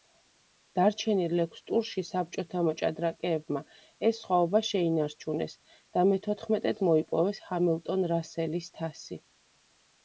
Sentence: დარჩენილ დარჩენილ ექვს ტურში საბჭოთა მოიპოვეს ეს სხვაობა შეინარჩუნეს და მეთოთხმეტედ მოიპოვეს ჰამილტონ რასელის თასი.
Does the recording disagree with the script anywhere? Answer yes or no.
yes